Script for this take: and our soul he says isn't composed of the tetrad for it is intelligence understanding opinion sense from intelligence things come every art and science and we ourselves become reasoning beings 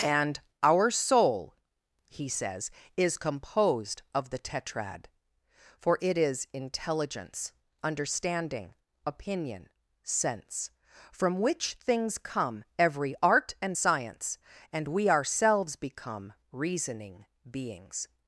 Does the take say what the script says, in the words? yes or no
no